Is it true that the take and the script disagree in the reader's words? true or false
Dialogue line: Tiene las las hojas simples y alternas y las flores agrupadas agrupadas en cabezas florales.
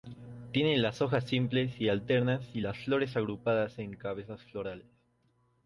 true